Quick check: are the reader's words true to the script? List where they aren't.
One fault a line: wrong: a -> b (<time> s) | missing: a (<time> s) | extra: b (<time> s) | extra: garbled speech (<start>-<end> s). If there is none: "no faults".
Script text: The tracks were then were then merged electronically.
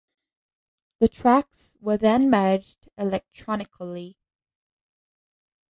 missing: were then (2.3 s)